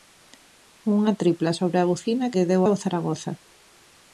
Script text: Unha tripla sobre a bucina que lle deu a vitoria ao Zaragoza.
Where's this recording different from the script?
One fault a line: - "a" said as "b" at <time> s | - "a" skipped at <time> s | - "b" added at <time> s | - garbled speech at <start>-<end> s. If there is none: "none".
- "que" skipped at 2.3 s
- "a vitoria" skipped at 2.6 s